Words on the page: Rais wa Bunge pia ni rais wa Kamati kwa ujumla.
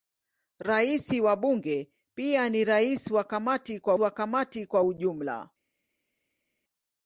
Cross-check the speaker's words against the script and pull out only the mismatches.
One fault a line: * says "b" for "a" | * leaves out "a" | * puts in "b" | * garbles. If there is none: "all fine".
* puts in "wa Kamati kwa"